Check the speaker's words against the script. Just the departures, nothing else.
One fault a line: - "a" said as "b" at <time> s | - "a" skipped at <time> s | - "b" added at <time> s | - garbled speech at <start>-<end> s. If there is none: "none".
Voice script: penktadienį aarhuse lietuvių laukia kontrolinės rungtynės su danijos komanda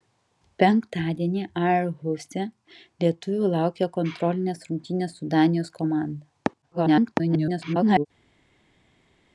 - garbled speech at 6.6-8.1 s